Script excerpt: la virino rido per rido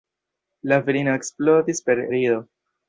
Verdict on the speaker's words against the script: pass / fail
fail